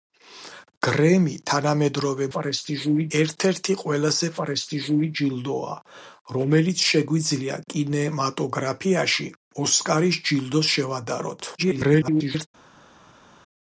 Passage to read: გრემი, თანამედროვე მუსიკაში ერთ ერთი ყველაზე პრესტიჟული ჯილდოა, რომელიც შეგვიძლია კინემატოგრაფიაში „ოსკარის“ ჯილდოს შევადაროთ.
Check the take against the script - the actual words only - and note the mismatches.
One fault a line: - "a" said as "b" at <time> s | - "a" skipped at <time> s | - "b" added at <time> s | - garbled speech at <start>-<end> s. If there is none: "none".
- "მუსიკაში" said as "პრესტიჟული" at 2.4 s
- garbled speech at 11.6-12.5 s